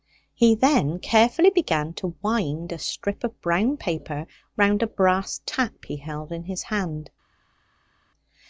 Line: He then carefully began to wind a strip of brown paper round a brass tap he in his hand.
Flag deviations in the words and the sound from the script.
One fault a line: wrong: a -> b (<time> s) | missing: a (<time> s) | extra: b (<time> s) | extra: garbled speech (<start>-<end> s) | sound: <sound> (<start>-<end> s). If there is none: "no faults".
extra: held (6.0 s)